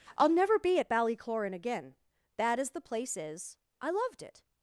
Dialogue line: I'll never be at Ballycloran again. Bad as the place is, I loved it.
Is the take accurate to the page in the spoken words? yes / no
yes